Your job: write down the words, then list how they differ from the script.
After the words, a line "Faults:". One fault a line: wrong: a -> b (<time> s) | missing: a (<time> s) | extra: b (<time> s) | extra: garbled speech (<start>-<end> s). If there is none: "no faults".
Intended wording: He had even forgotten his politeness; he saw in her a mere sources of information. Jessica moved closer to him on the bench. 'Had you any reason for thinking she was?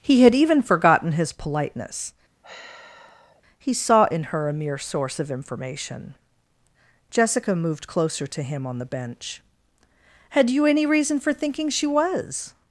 He had even forgotten his politeness; he saw in her a mere source of information. Jessica moved closer to him on the bench. 'Had you any reason for thinking she was?
Faults:
wrong: sources -> source (4.8 s)